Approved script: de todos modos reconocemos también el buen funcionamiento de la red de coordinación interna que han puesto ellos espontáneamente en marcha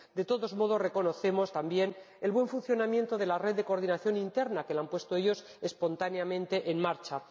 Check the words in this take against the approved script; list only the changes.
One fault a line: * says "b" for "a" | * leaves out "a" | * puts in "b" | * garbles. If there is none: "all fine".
all fine